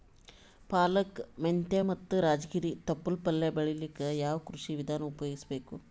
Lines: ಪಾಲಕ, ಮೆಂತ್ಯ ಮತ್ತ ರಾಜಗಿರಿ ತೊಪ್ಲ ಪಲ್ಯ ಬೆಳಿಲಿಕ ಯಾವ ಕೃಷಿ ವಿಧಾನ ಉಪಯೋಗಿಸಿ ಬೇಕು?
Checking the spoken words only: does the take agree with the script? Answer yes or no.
yes